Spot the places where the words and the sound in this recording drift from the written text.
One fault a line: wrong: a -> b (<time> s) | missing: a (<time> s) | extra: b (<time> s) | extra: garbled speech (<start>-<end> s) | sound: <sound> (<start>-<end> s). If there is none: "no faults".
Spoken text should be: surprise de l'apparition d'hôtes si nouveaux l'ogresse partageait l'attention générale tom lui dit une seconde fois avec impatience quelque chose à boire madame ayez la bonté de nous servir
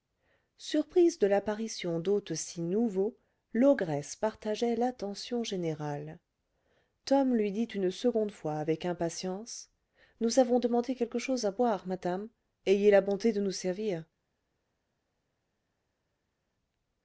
extra: nous avons demandé (10.2 s)